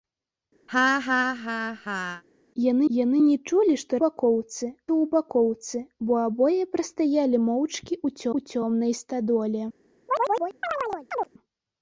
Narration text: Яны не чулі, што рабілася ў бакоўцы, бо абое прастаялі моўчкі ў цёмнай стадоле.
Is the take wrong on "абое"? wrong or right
right